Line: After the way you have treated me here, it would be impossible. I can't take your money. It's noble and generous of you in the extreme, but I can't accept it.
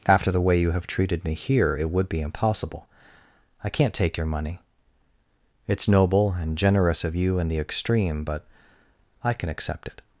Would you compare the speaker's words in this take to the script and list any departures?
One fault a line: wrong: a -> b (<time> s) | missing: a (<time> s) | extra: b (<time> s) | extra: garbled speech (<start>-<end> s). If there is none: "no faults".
wrong: can't -> can (9.3 s)